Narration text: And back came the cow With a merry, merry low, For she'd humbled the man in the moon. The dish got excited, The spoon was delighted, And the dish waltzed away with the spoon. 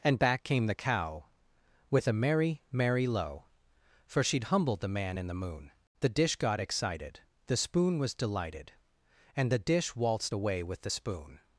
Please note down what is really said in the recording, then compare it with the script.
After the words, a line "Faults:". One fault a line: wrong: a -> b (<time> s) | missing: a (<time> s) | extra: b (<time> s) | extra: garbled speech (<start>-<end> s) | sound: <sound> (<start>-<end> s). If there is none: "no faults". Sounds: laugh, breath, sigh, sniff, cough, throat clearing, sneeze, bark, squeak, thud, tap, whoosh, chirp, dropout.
And back came the cow With a merry, merry low, For she'd humbled the man in the moon. The dish got excited, The spoon was delighted, And the dish waltzed away with the spoon.
Faults:
no faults